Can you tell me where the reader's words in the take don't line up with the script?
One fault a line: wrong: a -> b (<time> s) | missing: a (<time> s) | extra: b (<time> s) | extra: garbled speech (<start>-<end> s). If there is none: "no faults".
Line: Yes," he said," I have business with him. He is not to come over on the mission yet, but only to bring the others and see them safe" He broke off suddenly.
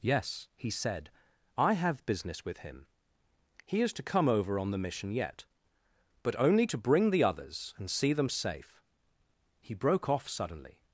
missing: not (3.9 s)